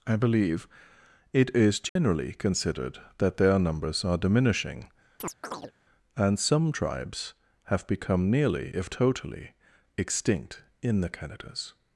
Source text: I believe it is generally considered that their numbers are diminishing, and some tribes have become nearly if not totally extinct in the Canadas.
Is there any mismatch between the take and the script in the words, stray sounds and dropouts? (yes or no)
yes